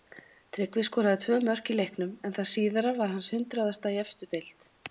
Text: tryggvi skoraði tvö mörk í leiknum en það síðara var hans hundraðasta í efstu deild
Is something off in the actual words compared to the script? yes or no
no